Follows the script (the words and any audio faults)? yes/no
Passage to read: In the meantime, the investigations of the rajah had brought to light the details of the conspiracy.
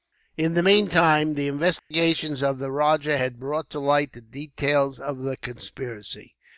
no